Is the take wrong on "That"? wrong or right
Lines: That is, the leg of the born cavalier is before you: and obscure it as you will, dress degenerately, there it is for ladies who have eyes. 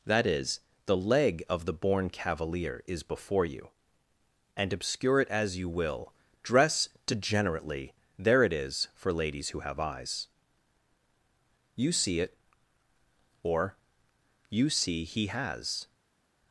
right